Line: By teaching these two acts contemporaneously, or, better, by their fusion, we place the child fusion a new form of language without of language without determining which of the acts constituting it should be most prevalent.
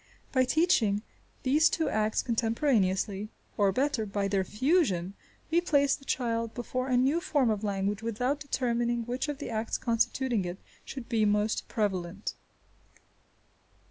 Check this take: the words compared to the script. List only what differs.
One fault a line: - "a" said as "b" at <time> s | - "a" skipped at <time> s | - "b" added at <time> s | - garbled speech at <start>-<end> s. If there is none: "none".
- "fusion" said as "before" at 6.5 s
- "of language without" skipped at 8.4 s